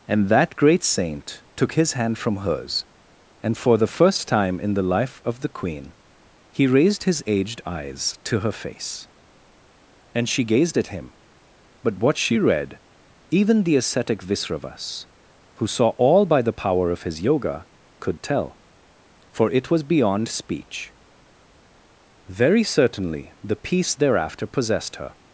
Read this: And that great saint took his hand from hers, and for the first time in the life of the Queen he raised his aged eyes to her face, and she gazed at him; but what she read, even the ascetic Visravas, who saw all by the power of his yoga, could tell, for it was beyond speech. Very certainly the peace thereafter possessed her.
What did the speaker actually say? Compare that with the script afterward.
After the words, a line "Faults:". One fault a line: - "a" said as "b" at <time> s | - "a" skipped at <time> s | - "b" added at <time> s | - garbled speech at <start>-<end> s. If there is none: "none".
And that great saint took his hand from hers, and for the first time in the life of the Queen he raised his aged eyes to her face, and she gazed at him; but what she read, even the ascetic Visravas, who saw all by the power of his yoga, could tell, for it was beyond speech. Very certainly the peace thereafter possessed her.
Faults:
none